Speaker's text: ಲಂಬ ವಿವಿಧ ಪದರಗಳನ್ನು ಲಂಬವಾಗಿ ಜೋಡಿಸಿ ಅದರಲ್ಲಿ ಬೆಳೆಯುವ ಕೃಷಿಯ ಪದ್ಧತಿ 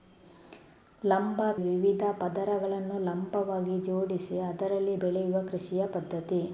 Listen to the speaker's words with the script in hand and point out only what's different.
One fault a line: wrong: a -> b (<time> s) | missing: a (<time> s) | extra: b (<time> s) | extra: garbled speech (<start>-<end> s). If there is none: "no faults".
no faults